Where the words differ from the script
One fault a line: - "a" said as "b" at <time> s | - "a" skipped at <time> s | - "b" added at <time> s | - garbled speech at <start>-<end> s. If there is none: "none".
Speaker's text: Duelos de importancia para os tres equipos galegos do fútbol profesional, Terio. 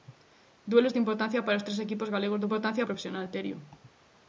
- "fútbol" said as "importancia" at 2.5 s